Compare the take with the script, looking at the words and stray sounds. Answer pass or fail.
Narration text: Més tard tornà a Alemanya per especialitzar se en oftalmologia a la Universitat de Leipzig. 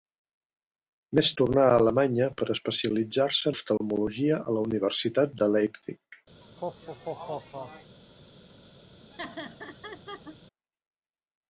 fail